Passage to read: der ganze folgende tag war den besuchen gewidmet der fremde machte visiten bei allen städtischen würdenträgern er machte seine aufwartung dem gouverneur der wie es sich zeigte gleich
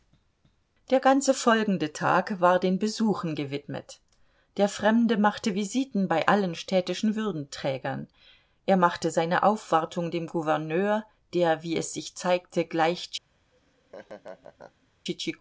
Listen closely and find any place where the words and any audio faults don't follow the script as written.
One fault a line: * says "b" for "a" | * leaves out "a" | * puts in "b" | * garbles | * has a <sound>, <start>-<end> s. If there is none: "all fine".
* has a laugh, 13.5-14.9 s